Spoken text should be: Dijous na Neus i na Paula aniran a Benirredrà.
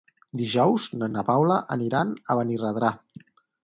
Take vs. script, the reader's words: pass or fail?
fail